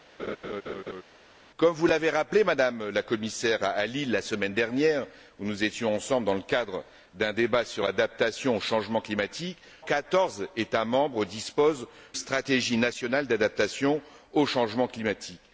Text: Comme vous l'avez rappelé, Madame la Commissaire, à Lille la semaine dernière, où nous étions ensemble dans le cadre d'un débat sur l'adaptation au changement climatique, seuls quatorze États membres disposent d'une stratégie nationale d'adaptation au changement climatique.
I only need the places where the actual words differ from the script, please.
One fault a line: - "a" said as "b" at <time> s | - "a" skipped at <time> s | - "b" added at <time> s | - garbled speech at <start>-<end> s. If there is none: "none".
- "seuls" skipped at 9.6 s
- "d'une" skipped at 11.9 s